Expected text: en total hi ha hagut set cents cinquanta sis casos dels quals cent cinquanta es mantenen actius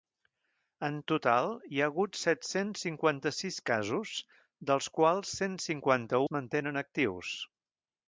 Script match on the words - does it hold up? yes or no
yes